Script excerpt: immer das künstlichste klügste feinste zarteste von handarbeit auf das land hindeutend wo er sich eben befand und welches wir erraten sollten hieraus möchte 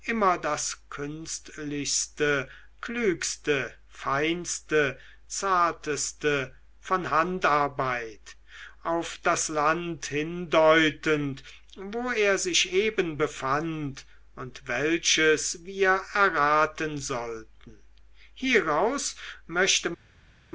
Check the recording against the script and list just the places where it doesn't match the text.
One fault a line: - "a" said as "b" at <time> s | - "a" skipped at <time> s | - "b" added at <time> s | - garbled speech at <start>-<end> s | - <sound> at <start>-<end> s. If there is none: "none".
none